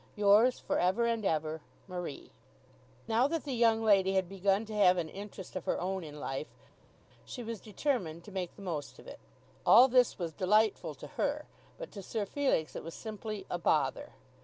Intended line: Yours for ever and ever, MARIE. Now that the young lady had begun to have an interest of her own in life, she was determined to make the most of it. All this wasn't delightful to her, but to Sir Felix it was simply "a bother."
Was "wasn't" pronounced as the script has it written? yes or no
no